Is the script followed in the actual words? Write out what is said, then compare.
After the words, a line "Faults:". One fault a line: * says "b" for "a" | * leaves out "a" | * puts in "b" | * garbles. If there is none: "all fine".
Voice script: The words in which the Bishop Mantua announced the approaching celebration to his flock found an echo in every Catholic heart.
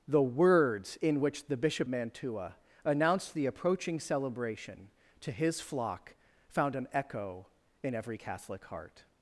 The words in which the Bishop Mantua announced the approaching celebration to his flock found an echo in every Catholic heart.
Faults:
all fine